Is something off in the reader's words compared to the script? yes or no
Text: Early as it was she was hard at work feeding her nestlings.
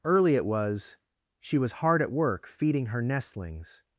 yes